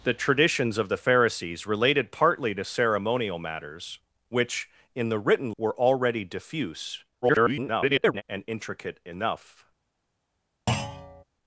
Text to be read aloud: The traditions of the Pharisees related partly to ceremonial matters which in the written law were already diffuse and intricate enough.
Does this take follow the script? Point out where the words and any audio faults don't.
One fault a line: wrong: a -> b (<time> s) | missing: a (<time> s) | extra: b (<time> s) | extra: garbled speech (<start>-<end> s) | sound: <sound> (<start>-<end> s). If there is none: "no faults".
missing: law (5.5 s)
extra: garbled speech (7.2-8.2 s)
sound: thud (10.7-11.2 s)